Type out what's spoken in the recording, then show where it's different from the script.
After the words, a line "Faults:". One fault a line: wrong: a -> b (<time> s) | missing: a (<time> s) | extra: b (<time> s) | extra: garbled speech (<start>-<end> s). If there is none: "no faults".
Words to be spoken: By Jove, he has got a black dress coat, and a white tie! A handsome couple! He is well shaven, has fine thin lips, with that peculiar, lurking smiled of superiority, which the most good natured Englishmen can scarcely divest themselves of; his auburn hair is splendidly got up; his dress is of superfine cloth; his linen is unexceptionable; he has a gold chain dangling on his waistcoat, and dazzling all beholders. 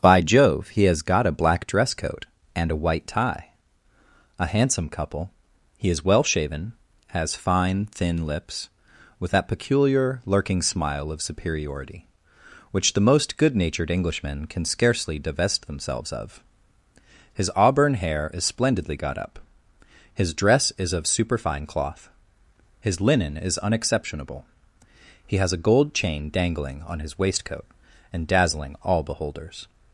By Jove, he has got a black dress coat, and a white tie! A handsome couple! He is well shaven, has fine thin lips, with that peculiar, lurking smile of superiority, which the most good natured Englishmen can scarcely divest themselves of; his auburn hair is splendidly got up; his dress is of superfine cloth; his linen is unexceptionable; he has a gold chain dangling on his waistcoat, and dazzling all beholders.
Faults:
wrong: smiled -> smile (10.6 s)